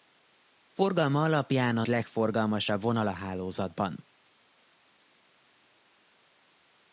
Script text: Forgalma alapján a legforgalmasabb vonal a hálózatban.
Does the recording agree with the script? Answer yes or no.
yes